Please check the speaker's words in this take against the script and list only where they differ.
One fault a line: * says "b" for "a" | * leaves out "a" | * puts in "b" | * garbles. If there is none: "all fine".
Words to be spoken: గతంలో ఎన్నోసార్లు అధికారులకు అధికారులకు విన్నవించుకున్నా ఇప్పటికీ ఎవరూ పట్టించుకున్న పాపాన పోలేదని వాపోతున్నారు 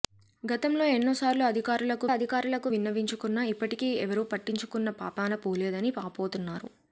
all fine